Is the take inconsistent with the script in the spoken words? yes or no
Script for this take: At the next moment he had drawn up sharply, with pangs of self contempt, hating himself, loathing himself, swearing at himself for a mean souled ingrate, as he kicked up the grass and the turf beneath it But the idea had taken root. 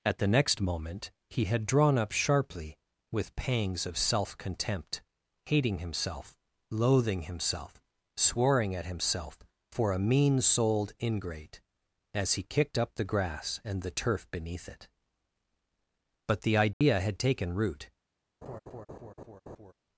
no